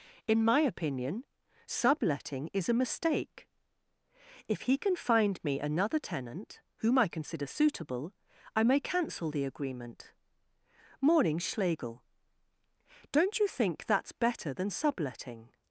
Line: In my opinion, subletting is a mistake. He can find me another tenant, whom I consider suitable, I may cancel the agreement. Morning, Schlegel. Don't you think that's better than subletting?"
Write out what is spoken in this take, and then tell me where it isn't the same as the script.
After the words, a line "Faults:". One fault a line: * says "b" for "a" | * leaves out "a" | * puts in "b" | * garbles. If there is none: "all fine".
In my opinion, subletting is a mistake. If he can find me another tenant, whom I consider suitable, I may cancel the agreement. Morning, Schlegel. Don't you think that's better than subletting?"
Faults:
* puts in "If"